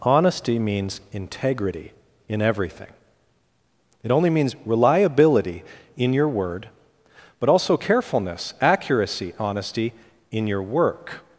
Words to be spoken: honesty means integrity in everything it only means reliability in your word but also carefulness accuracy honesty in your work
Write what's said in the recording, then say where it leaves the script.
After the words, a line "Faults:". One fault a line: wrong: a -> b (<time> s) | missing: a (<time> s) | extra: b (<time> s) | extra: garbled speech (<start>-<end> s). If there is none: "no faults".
honesty means integrity in everything it only means reliability in your word but also carefulness accuracy honesty in your work
Faults:
no faults